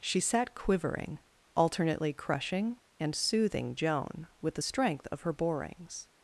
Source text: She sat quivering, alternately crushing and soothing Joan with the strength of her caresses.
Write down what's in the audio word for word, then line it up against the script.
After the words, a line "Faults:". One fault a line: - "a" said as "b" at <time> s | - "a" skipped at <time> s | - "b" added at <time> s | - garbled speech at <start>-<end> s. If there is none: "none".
She sat quivering, alternately crushing and soothing Joan with the strength of her borings.
Faults:
- "caresses" said as "borings" at 5.3 s